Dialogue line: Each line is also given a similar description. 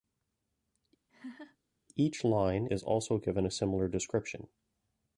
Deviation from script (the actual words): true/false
false